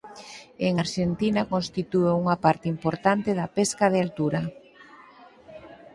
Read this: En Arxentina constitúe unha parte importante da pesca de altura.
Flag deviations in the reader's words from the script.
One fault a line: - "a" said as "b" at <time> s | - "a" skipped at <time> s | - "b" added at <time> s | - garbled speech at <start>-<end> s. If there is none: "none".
none